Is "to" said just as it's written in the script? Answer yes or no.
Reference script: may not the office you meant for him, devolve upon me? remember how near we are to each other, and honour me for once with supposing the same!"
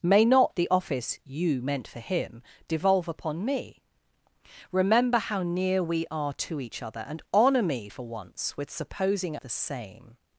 yes